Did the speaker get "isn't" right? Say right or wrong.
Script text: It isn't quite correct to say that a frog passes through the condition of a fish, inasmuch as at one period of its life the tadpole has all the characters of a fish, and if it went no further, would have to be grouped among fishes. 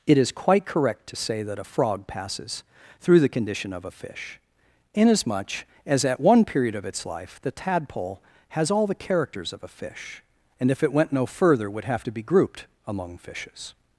wrong